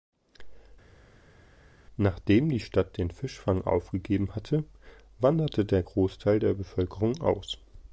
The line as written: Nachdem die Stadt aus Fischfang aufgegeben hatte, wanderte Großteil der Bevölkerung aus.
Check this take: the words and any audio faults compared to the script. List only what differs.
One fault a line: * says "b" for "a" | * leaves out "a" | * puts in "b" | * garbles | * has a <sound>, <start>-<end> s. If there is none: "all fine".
* says "den" for "aus"
* puts in "der"